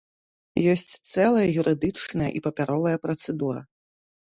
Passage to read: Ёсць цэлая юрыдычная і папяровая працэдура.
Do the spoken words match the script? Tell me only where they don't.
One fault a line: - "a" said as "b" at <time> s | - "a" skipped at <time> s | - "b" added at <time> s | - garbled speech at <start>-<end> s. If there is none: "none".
none